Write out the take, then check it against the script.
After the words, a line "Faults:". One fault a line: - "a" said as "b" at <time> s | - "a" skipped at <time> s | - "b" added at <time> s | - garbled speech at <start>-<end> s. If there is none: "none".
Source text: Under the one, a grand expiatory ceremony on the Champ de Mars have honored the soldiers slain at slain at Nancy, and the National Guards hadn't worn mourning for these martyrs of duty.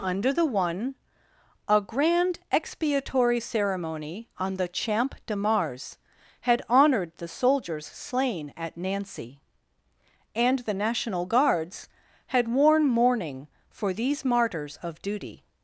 Under the one, a grand expiatory ceremony on the Champ de Mars had honored the soldiers slain at Nancy, and the National Guards had worn mourning for these martyrs of duty.
Faults:
- "have" said as "had" at 6.4 s
- "slain at" skipped at 8.8 s
- "hadn't" said as "had" at 12.3 s